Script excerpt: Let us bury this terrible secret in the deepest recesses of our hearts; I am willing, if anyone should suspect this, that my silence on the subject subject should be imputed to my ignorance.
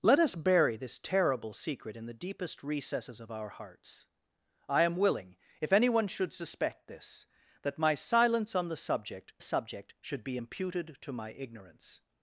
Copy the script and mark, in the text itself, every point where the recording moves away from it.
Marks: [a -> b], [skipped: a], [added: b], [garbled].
Let us bury this terrible secret in the deepest recesses of our hearts; I am willing, if anyone should suspect this, that my silence on the subject subject should be imputed to my ignorance.